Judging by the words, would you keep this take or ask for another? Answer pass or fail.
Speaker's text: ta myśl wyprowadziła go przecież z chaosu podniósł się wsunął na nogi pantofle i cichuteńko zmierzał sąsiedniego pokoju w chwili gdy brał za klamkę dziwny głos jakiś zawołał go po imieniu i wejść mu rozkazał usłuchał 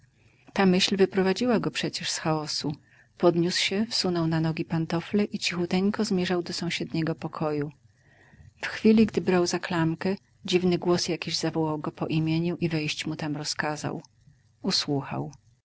fail